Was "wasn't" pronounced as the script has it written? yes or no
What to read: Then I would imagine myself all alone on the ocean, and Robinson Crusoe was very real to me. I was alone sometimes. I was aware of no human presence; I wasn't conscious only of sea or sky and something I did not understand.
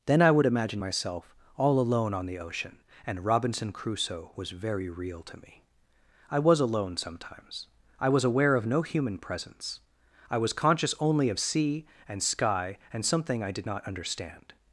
no